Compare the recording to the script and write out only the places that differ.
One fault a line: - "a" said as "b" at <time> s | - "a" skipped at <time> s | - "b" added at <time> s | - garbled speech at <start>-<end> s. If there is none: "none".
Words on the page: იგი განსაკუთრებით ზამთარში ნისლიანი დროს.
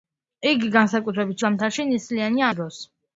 none